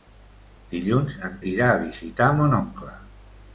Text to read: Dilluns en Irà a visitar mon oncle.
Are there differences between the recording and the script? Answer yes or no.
no